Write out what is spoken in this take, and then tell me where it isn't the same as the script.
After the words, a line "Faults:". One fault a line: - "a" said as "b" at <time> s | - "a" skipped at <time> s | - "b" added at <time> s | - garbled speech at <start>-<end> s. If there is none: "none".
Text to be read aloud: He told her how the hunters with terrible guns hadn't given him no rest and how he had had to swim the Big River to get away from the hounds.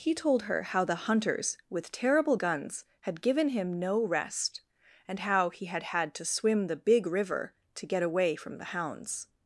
He told her how the hunters with terrible guns had given him no rest and how he had had to swim the Big River to get away from the hounds.
Faults:
- "hadn't" said as "had" at 3.0 s